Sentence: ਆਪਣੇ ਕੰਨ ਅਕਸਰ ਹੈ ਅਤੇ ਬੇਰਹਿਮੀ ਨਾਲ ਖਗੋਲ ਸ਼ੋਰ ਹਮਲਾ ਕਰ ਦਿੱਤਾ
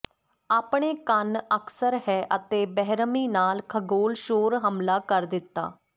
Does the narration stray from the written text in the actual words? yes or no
no